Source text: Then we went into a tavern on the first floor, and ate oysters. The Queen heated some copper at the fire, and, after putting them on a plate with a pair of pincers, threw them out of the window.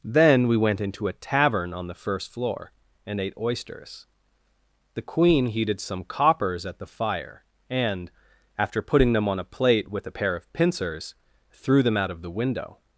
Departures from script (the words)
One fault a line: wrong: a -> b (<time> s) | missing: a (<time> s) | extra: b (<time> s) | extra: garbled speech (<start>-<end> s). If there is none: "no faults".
wrong: copper -> coppers (6.0 s)